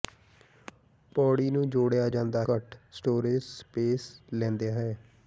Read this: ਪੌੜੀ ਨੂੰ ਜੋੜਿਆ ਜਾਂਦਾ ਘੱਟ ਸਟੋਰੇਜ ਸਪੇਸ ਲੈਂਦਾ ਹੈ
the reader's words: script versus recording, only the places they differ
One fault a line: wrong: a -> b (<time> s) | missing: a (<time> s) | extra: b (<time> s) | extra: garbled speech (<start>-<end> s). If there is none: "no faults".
no faults